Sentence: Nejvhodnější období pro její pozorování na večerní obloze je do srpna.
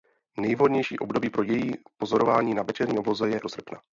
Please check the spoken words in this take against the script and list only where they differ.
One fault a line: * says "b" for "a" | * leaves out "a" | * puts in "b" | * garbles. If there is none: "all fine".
all fine